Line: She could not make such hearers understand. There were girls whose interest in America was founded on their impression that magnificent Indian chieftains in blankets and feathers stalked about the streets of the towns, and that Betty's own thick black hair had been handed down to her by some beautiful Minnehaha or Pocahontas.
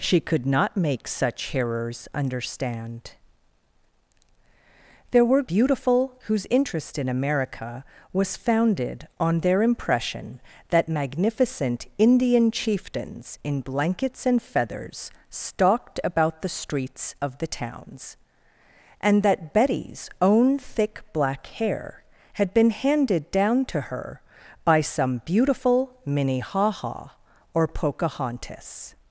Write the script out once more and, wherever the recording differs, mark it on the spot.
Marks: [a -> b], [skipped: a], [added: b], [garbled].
She could not make such hearers understand. There were [girls -> beautiful] whose interest in America was founded on their impression that magnificent Indian chieftains in blankets and feathers stalked about the streets of the towns, and that Betty's own thick black hair had been handed down to her by some beautiful Minnehaha or Pocahontas.